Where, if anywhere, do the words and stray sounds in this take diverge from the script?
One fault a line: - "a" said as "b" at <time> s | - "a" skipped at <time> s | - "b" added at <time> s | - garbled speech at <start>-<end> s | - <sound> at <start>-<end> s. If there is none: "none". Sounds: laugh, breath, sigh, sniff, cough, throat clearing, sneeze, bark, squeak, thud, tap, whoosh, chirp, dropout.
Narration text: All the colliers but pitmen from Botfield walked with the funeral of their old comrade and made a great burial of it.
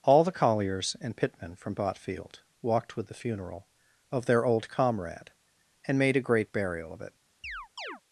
- "but" said as "and" at 1.0 s
- chirp at 7.4-8.0 s